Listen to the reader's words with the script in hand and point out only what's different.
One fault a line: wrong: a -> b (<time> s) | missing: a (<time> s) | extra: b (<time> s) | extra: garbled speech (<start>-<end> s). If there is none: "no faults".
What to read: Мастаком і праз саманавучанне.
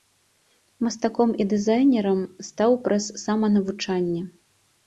extra: дызайнерам стаў (1.5 s)